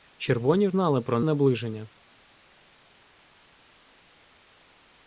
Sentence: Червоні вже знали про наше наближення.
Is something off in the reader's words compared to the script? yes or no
yes